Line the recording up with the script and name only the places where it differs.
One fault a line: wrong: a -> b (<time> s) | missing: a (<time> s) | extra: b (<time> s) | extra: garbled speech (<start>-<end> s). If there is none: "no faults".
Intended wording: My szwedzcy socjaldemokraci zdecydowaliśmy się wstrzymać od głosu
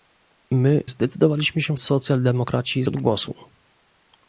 missing: szwedzcy socjaldemokraci (0.8 s)
wrong: wstrzymać -> socjaldemokraci (1.8 s)